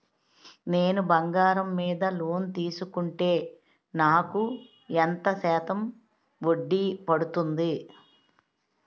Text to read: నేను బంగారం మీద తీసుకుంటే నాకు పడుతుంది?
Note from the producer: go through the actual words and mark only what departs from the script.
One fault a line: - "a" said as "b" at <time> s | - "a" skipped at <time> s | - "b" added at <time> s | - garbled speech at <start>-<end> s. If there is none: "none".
- "లోన్" added at 2.1 s
- "ఎంత శాతం వడ్డీ" added at 5.0 s